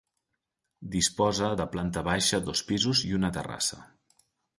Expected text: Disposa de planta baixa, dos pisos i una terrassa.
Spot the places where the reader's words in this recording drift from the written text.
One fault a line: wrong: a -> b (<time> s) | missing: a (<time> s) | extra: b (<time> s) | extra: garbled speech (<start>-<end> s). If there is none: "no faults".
no faults